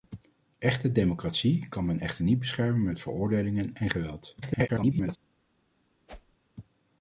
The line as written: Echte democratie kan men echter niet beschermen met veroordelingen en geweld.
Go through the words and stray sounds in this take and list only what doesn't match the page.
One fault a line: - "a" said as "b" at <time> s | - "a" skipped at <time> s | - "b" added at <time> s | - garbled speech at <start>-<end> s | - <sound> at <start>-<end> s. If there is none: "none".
- garbled speech at 4.4-5.2 s
- whoosh at 6.1-6.4 s